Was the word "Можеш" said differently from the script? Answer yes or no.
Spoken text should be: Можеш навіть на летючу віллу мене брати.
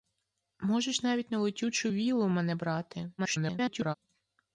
no